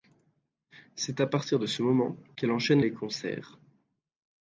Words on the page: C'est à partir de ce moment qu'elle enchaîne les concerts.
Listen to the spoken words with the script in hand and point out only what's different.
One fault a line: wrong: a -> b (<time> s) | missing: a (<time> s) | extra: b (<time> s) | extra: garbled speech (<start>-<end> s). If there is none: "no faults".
no faults